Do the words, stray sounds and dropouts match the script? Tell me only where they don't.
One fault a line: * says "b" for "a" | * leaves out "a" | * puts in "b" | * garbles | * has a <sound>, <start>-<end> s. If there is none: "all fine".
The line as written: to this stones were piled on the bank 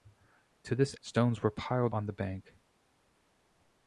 all fine